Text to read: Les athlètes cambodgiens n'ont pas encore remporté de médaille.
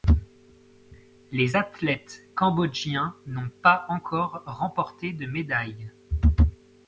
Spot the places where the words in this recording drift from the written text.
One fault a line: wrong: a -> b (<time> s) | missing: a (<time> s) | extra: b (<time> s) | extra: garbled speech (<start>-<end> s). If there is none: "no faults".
no faults